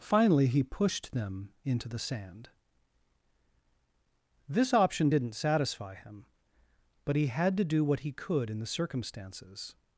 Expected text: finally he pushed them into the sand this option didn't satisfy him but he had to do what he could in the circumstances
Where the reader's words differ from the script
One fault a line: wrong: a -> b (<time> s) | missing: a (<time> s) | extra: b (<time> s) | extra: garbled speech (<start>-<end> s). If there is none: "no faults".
no faults